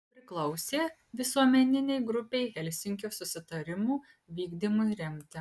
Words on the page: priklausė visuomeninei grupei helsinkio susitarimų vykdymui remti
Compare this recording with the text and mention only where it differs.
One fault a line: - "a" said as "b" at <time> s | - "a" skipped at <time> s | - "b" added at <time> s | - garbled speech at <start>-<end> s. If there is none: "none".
none